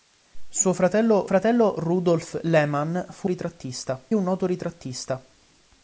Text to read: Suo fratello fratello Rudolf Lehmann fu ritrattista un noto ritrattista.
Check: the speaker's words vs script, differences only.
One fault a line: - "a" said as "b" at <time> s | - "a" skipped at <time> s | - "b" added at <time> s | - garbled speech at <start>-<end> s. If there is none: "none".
none